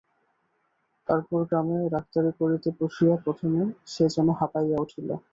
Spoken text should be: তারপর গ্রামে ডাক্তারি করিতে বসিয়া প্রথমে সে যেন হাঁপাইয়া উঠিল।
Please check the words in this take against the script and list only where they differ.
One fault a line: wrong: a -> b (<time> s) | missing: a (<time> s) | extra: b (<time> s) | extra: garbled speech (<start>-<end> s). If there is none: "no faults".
no faults